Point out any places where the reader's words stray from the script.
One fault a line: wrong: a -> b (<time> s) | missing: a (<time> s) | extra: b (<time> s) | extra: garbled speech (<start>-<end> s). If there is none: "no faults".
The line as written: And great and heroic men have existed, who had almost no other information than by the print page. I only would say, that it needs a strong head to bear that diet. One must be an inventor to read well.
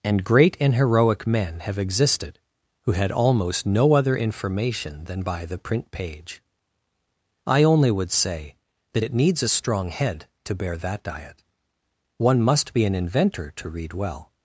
no faults